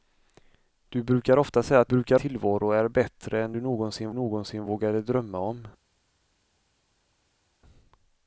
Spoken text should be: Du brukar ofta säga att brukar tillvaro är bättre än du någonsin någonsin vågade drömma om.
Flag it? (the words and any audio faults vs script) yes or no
no